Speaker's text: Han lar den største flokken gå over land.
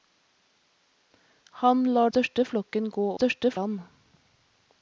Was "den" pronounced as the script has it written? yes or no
no